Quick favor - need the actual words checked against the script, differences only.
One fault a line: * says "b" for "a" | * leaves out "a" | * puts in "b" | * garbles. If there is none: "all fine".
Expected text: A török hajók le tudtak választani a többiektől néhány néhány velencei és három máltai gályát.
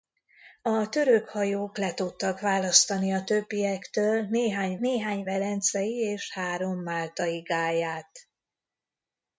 all fine